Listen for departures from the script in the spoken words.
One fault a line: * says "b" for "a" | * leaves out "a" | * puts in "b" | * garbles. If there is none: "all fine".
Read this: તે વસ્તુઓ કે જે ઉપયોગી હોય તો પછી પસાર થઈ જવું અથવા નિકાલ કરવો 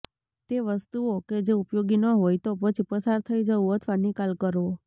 * puts in "ન"